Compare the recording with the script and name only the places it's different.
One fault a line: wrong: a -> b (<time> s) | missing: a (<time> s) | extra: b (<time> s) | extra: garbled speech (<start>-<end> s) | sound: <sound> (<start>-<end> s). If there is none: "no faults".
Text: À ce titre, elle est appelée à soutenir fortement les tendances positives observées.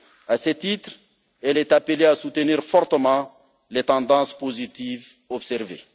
no faults